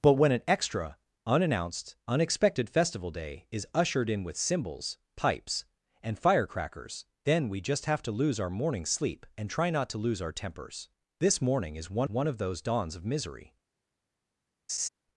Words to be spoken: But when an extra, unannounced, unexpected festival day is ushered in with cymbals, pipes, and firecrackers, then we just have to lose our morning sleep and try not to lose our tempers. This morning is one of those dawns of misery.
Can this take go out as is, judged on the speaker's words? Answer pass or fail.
fail